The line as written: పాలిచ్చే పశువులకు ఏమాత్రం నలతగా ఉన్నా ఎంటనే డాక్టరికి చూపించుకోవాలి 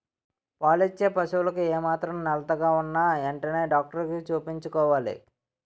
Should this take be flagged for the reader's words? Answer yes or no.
no